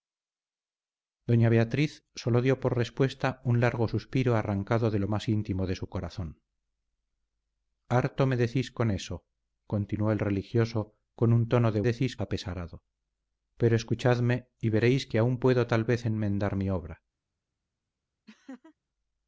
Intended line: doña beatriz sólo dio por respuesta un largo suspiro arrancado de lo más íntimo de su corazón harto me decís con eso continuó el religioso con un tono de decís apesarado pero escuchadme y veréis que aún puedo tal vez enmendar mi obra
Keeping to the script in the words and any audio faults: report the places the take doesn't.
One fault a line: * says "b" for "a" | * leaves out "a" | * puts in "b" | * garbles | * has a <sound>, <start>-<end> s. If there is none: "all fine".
* has a laugh, 18.3-18.8 s